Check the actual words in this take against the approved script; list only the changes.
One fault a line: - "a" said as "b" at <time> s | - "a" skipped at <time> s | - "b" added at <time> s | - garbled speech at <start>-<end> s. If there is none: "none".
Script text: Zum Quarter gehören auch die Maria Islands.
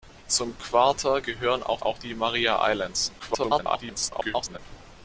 - "auch" added at 1.8 s
- garbled speech at 3.2-4.6 s